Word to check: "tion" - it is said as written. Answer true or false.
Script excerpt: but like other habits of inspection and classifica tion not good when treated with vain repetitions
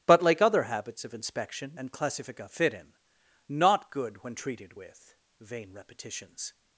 false